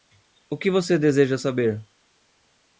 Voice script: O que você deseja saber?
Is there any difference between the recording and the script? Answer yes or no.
no